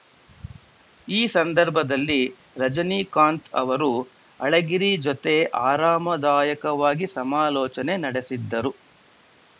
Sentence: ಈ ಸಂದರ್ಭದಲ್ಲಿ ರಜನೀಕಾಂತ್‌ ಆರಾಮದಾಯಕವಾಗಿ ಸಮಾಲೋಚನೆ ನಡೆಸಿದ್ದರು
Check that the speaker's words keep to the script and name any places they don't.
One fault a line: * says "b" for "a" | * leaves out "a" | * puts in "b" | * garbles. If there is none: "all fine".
* puts in "ಅವರು ಅಳಗಿರಿ ಜೊತೆ"